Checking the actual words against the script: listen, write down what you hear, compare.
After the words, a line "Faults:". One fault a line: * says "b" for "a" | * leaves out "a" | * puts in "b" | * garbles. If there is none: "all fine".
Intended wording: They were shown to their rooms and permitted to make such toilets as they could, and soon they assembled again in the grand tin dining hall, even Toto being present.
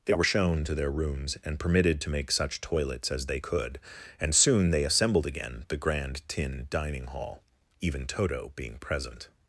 They were shown to their rooms and permitted to make such toilets as they could, and soon they assembled again the grand tin dining hall, even Toto being present.
Faults:
* leaves out "in"